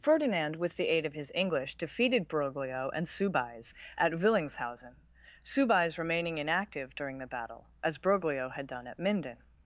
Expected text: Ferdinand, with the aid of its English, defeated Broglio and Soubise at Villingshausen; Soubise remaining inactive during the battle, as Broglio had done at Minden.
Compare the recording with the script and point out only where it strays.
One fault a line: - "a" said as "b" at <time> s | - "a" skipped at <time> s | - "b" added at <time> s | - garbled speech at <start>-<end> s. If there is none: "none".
- "its" said as "his" at 1.1 s